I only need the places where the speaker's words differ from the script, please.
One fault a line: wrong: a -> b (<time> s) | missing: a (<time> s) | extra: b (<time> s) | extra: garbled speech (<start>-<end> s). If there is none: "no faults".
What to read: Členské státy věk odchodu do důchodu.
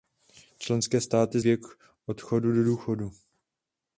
no faults